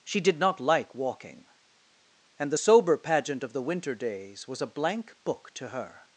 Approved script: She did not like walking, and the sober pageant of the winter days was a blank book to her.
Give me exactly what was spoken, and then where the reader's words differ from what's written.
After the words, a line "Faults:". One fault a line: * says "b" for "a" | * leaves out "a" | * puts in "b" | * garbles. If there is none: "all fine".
She did not like walking, and the sober pageant of the winter days was a blank book to her.
Faults:
all fine